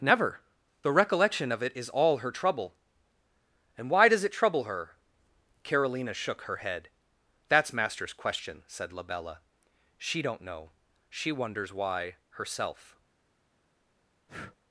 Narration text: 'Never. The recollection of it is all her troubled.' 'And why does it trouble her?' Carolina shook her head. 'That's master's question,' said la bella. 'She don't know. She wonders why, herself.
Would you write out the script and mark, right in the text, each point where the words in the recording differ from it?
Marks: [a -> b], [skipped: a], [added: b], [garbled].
'Never. The recollection of it is all her [troubled.' -> trouble] 'And why does it trouble her?' Carolina shook her head. 'That's master's question,' said la bella. 'She don't know. She wonders why, herself.